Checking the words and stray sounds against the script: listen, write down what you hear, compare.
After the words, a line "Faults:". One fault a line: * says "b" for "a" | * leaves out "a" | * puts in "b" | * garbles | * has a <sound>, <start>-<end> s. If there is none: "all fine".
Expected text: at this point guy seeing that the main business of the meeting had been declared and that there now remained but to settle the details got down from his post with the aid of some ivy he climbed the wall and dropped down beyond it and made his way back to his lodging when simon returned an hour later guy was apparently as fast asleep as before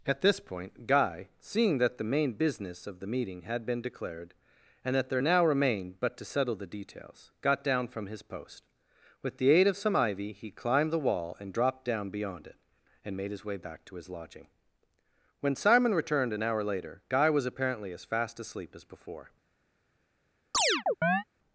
at this point guy seeing that the main business of the meeting had been declared and that there now remained but to settle the details got down from his post with the aid of some ivy he climbed the wall and dropped down beyond it and made his way back to his lodging when simon returned an hour later guy was apparently as fast asleep as before
Faults:
* has a chirp, 20.5-21.2 s